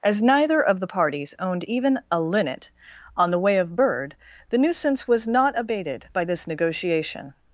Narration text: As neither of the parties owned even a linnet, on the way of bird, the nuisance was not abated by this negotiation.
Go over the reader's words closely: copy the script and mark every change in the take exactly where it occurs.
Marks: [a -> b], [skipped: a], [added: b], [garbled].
As neither of the parties owned even a linnet, on the way of bird, the nuisance was not abated by this negotiation.